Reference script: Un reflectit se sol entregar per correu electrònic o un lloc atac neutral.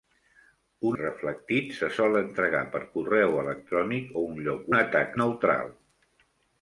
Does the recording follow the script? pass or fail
pass